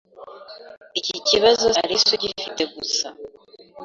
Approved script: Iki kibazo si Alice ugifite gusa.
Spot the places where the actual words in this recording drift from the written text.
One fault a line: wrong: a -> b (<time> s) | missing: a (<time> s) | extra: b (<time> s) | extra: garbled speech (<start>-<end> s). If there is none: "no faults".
missing: si (1.7 s)